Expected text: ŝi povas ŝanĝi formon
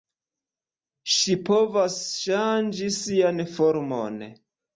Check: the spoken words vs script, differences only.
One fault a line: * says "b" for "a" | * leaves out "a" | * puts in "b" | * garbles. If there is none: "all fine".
* puts in "sian"